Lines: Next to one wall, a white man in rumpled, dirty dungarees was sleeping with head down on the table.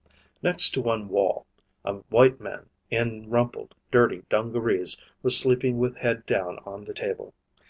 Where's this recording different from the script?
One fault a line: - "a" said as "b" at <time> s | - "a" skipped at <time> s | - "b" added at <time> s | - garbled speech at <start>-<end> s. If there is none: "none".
none